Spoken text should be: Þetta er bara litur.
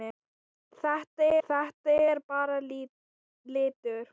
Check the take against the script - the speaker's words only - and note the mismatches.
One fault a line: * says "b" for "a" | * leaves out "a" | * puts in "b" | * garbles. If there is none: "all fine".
* puts in "þetta"